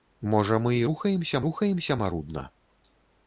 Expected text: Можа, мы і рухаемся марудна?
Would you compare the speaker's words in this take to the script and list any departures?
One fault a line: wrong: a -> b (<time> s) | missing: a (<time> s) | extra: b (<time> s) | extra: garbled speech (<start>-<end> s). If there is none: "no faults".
extra: рухаемся (1.5 s)